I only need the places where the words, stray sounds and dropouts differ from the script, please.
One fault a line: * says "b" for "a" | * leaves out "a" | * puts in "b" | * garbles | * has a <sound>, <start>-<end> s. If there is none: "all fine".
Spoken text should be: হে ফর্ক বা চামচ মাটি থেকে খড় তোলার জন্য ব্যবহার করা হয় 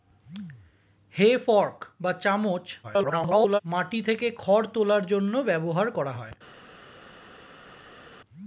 * garbles